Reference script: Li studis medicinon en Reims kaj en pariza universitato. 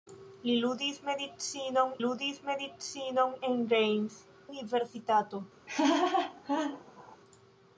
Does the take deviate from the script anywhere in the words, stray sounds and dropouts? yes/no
yes